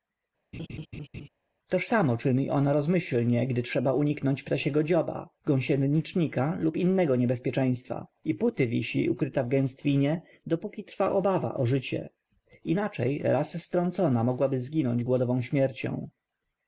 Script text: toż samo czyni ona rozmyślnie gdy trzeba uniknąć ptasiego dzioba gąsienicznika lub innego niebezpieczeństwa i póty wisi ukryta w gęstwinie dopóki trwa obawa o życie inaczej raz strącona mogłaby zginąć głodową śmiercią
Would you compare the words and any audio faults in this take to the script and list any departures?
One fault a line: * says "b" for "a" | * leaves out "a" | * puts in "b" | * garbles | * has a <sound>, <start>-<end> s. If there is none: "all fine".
* has a laugh, 0.5-1.3 s